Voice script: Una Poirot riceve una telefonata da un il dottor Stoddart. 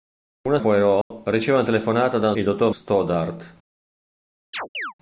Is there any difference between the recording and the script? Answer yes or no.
no